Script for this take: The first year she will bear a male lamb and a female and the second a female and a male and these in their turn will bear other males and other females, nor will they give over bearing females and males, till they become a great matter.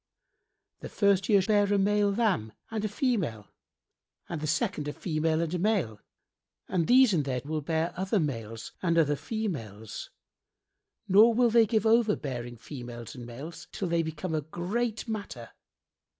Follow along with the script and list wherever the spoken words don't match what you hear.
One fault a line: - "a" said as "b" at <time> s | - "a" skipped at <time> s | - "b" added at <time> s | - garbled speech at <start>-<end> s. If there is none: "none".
- "she will" skipped at 1.4 s
- "turn" skipped at 7.4 s